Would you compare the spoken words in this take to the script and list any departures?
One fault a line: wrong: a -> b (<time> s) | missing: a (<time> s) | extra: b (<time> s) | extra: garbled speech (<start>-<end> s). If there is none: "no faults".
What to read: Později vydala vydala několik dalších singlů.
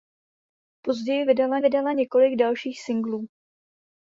no faults